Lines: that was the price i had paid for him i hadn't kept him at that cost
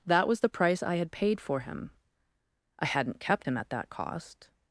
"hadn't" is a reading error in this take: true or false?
false